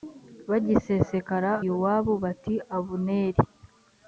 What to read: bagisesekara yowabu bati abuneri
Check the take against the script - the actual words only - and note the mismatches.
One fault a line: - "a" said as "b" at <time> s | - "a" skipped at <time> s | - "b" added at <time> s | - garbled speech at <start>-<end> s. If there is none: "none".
none